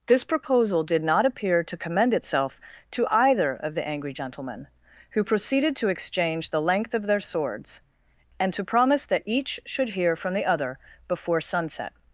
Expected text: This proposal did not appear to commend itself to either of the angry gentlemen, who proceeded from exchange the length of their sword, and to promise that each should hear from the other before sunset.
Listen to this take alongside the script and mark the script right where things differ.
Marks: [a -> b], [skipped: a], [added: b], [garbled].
This proposal did not appear to commend itself to either of the angry gentlemen, who proceeded [from -> to] exchange the length of their [sword, -> swords] and to promise that each should hear from the other before sunset.